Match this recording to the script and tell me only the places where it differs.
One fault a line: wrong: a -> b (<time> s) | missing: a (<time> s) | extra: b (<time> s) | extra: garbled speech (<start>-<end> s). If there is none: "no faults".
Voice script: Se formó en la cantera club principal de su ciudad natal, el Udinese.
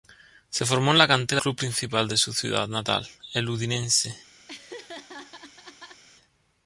no faults